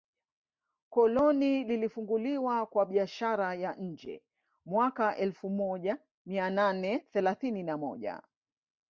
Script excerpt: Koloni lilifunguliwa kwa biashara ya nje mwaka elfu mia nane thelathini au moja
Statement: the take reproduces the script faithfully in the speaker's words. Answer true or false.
false